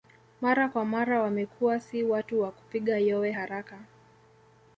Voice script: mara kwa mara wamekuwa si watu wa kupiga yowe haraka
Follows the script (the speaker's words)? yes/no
yes